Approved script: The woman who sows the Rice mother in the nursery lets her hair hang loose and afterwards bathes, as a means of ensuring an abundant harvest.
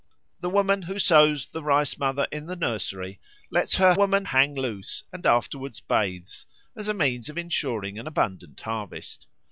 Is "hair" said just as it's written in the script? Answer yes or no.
no